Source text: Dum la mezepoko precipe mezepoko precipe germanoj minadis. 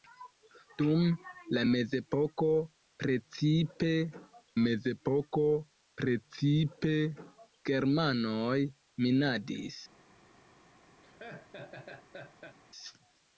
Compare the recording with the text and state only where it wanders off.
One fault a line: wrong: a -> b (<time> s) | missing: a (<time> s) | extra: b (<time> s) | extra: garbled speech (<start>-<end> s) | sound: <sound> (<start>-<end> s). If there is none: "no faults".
sound: laugh (11.0-12.6 s)